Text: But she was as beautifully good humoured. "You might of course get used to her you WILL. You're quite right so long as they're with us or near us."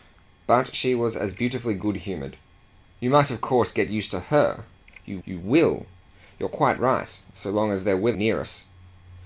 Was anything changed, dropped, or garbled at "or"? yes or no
yes